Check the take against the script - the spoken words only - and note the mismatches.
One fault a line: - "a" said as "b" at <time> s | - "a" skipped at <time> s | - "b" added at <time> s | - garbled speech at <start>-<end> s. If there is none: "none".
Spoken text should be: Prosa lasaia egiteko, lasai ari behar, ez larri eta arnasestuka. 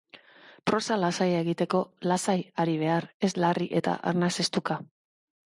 none